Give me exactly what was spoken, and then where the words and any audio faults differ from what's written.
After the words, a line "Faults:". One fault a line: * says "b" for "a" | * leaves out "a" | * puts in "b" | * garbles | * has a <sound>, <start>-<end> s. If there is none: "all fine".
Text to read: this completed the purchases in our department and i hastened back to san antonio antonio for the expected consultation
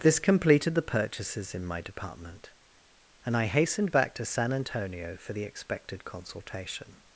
this completed the purchases in my department and i hastened back to san antonio for the expected consultation
Faults:
* says "my" for "our"
* leaves out "antonio"